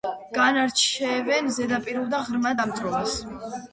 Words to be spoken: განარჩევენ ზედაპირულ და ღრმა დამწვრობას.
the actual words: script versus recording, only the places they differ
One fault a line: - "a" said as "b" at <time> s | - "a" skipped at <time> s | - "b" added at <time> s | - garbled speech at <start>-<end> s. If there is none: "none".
none